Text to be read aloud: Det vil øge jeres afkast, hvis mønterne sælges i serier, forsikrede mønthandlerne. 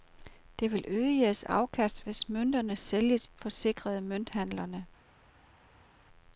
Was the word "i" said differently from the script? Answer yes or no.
yes